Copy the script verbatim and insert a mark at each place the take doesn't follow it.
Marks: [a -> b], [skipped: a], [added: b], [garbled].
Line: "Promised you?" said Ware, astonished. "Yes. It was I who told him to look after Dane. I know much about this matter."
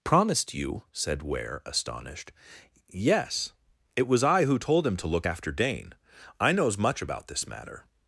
"Promised you?" said Ware, astonished. "Yes. It was I who told him to look after Dane. I [know -> knows] much about this matter."